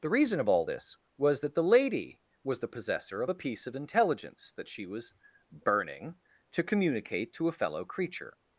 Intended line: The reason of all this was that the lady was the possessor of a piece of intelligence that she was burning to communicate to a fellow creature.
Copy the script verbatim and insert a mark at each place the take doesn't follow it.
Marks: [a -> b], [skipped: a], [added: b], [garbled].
The reason of all this was that the lady was the possessor of a piece of intelligence that she was burning to communicate to a fellow creature.